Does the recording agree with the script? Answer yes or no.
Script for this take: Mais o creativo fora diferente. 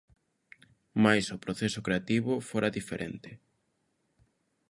no